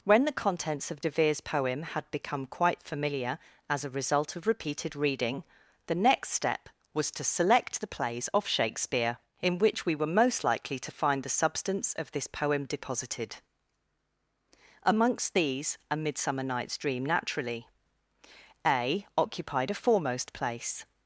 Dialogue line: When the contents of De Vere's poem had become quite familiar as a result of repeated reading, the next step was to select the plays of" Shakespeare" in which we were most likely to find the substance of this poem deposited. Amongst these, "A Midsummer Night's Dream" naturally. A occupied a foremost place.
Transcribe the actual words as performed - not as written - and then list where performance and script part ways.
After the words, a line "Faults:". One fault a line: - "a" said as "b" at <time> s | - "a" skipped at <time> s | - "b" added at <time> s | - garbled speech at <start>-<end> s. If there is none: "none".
When the contents of De Vere's poem had become quite familiar as a result of repeated reading, the next step was to select the plays of" Shakespeare" in which we were most likely to find the substance of this poem deposited. Amongst these, "A Midsummer Night's Dream" naturally. A occupied a foremost place.
Faults:
none